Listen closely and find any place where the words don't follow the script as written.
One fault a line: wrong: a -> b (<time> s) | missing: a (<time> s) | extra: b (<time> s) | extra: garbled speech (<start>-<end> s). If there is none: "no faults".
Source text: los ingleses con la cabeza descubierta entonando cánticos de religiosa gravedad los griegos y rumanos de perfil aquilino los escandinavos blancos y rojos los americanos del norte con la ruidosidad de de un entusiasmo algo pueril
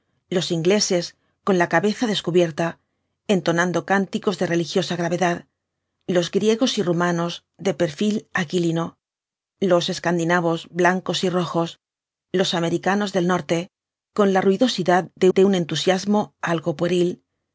no faults